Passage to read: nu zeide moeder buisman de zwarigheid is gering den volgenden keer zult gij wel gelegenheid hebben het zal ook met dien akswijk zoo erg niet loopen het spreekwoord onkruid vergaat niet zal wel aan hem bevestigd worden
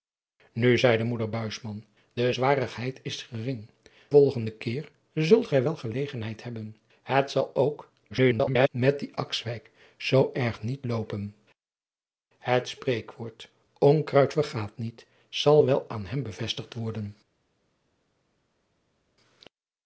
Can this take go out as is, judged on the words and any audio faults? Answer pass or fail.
fail